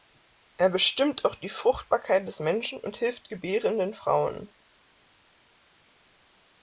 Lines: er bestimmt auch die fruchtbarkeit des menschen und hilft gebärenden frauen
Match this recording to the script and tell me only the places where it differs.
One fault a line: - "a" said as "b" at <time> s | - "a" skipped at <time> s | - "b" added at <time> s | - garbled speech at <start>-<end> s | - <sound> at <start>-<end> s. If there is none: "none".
none